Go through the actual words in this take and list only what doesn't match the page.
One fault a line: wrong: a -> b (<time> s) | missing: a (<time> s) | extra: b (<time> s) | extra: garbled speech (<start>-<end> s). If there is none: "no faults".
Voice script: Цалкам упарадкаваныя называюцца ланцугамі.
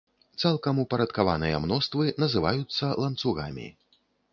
extra: мноствы (1.7 s)